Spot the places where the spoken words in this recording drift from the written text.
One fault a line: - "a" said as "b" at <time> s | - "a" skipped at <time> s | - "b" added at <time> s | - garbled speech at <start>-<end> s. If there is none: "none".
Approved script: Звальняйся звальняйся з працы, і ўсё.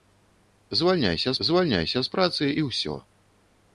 none